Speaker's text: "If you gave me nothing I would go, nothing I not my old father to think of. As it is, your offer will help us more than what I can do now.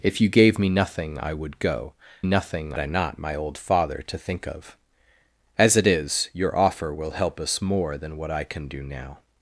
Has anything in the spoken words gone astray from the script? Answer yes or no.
no